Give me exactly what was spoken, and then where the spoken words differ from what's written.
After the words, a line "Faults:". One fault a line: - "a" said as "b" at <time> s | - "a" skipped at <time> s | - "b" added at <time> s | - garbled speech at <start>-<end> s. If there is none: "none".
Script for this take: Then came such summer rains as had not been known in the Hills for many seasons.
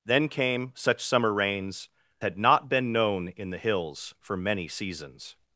Then came such summer rains had not been known in the Hills for many seasons.
Faults:
- "as" skipped at 1.9 s